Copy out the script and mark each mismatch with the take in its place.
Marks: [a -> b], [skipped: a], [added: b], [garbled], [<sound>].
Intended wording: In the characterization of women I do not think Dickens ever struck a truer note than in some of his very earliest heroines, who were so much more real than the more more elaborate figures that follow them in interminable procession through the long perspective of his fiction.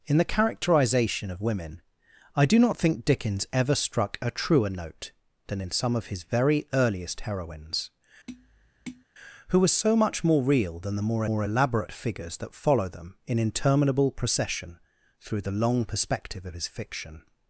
In the characterization of women I do not think Dickens ever struck a truer note than in some of his very earliest heroines, [tap] who were so much more real than the more more elaborate figures that follow them in interminable procession through the long perspective of his fiction.